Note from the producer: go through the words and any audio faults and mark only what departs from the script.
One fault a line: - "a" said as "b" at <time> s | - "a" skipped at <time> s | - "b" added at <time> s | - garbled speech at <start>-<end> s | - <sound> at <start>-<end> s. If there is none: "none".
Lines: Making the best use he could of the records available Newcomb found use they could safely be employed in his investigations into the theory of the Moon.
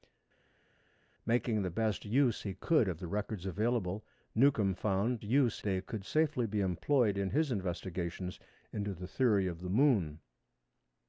none